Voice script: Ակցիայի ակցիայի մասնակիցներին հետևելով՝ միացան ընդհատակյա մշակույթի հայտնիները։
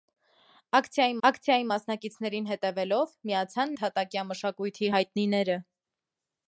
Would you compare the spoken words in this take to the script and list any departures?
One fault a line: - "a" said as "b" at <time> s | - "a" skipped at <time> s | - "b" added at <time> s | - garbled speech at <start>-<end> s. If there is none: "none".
none